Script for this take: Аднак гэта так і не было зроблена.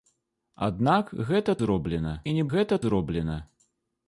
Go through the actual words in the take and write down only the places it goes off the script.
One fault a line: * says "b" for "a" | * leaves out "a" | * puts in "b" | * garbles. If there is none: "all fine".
* says "зроблена" for "так"
* says "гэта" for "было"